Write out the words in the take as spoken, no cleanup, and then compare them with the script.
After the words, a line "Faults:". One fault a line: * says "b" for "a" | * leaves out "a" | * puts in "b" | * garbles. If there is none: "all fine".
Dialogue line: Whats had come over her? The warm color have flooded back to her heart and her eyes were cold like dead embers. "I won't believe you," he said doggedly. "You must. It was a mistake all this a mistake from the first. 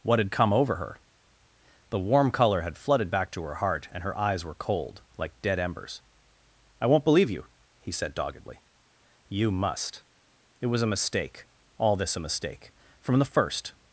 What had come over her? The warm color had flooded back to her heart and her eyes were cold like dead embers. "I won't believe you," he said doggedly. "You must. It was a mistake all this a mistake from the first.
Faults:
* says "What" for "Whats"
* says "had" for "have"